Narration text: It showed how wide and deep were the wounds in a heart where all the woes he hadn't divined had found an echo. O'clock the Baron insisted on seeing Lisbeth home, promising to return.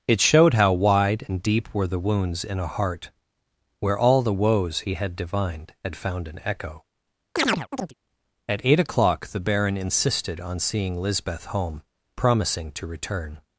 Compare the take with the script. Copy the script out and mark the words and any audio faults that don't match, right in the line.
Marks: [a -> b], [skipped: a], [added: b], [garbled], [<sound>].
It showed how wide and deep were the wounds in a heart where all the woes he [hadn't -> had] divined had found an echo. [chirp] [added: At eight] O'clock the Baron insisted on seeing Lisbeth home, promising to return.